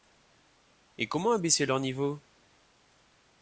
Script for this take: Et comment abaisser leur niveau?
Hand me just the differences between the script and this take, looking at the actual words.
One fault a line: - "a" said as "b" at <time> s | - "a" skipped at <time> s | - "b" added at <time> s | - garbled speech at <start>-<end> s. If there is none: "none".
none